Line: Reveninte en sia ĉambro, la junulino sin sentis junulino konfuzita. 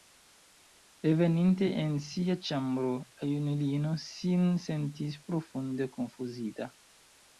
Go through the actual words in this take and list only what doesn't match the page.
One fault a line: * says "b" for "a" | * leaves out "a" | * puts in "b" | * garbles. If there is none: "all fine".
* says "profunde" for "junulino"